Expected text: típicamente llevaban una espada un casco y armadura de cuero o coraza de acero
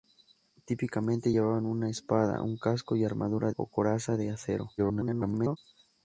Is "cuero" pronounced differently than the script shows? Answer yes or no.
yes